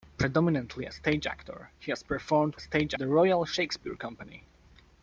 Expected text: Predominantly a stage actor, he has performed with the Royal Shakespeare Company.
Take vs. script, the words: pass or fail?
fail